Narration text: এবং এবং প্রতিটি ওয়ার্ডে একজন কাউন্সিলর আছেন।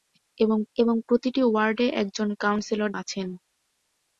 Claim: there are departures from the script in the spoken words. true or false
false